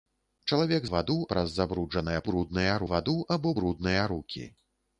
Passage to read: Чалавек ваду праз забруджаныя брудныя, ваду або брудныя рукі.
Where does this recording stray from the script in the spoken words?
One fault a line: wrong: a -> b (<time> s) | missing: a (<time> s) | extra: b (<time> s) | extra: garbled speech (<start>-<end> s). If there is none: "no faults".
no faults